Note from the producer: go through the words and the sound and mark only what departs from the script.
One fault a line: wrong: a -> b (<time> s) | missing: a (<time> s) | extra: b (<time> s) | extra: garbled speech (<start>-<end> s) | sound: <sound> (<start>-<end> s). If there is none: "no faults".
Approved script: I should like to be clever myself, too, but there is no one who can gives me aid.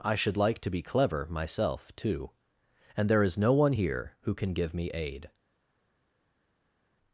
wrong: but -> and (3.0 s)
extra: here (3.7 s)
wrong: gives -> give (4.5 s)